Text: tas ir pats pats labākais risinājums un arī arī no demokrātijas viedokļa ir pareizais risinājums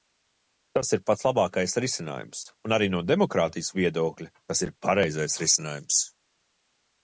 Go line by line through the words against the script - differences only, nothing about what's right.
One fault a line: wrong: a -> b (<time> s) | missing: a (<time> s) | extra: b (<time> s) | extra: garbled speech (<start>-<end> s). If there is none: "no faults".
missing: pats (1.2 s)
missing: arī (2.9 s)
extra: tas (4.4 s)